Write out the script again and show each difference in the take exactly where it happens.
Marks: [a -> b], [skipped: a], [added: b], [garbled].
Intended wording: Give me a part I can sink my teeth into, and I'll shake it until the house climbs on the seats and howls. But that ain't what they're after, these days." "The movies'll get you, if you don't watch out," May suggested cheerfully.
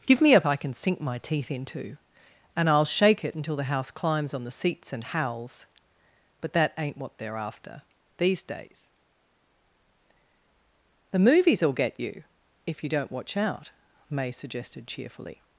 Give me a [skipped: part] I can sink my teeth into, and I'll shake it until the house climbs on the seats and howls. But that ain't what they're after, these days." "The movies'll get you, if you don't watch out," May suggested cheerfully.